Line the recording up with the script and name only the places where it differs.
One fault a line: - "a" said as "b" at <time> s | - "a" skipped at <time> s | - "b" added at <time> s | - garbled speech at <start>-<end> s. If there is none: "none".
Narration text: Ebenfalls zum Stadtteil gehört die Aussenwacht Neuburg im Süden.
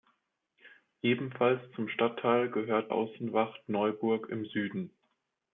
- "die" skipped at 2.9 s